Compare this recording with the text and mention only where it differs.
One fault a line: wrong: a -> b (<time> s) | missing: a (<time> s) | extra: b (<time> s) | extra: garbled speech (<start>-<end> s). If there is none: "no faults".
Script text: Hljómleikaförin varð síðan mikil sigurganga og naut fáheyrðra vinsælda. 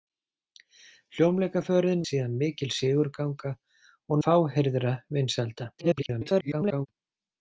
missing: varð (2.0 s)
missing: naut (4.2 s)
extra: garbled speech (5.8-6.9 s)